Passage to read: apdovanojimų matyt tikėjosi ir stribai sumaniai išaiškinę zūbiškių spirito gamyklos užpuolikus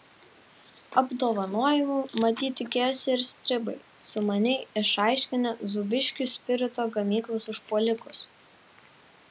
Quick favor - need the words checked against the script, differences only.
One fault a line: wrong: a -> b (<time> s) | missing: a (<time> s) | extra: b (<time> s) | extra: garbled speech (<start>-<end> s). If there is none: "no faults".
no faults